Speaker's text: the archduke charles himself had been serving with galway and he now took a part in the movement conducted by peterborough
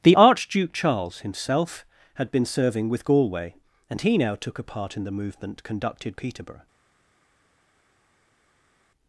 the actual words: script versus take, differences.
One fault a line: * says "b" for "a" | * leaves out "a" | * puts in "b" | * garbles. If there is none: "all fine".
* leaves out "by"